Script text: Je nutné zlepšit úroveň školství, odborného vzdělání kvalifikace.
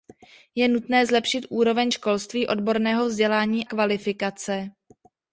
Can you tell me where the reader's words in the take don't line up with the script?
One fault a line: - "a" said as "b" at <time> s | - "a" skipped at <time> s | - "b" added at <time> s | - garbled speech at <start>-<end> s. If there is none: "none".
none